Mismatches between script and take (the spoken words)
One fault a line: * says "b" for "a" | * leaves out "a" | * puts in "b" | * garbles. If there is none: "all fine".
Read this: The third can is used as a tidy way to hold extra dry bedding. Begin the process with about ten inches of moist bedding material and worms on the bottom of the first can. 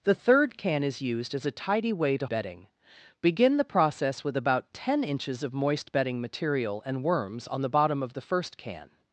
* leaves out "hold extra dry"